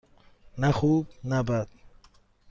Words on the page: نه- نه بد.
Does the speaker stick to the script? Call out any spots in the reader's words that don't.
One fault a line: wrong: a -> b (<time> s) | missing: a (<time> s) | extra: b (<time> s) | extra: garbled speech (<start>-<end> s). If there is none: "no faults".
extra: خوب (0.7 s)